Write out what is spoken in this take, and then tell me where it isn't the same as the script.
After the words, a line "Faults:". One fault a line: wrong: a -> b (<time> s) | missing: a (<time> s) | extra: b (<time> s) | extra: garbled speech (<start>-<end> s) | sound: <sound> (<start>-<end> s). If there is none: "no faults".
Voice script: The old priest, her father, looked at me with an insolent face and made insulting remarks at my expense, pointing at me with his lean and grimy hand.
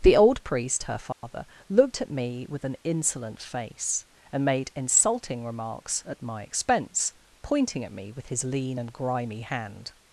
The old priest, her father, looked at me with an insolent face and made insulting remarks at my expense, pointing at me with his lean and grimy hand.
Faults:
sound: dropout (1.1-1.2 s)